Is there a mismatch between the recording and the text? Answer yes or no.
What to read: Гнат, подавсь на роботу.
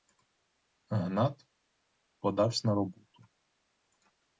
no